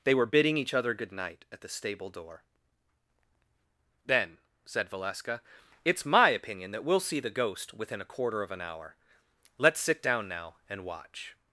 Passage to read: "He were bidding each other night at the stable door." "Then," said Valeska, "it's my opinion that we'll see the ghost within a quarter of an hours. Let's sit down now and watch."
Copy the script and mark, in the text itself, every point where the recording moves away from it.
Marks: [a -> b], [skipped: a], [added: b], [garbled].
["He -> They] were bidding each other [added: good] night at the stable door." "Then," said Valeska, "it's my opinion that we'll see the ghost within a quarter of an [hours. -> hour] Let's sit down now and watch."